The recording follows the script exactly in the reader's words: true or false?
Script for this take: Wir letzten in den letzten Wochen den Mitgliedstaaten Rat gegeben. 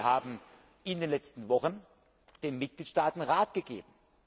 false